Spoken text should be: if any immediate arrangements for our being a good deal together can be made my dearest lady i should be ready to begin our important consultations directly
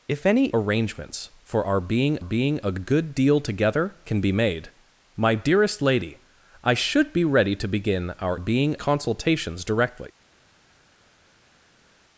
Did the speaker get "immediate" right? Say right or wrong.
wrong